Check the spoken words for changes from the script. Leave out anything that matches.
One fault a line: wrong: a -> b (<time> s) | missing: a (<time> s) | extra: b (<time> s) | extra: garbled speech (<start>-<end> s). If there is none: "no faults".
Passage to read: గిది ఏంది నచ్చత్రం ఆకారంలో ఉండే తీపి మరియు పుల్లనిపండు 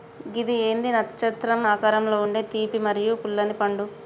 no faults